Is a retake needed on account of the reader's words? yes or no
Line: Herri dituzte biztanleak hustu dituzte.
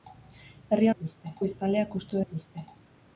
no